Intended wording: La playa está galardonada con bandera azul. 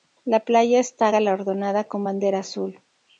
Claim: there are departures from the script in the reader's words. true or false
false